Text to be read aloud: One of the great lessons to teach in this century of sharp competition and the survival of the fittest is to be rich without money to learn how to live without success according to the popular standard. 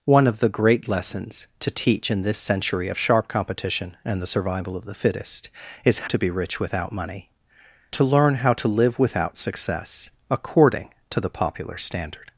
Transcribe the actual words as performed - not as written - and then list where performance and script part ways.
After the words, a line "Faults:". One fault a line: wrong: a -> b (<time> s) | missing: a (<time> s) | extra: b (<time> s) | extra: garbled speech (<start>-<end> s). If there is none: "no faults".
One of the great lessons to teach in this century of sharp competition and the survival of the fittest is to be rich without money to learn how to live without success according to the popular standard.
Faults:
no faults